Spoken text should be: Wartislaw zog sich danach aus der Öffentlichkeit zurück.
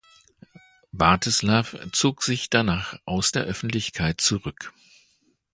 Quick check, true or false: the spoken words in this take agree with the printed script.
true